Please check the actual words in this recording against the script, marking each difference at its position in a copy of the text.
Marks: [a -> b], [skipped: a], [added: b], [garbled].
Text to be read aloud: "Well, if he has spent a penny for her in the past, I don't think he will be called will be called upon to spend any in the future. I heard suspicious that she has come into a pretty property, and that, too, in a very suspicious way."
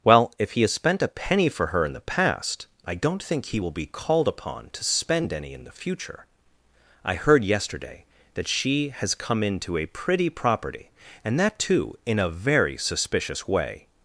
"Well, if he has spent a penny for her in the past, I don't think he will be called [skipped: will be called] upon to spend any in the future. I heard [suspicious -> yesterday] that she has come into a pretty property, and that, too, in a very suspicious way."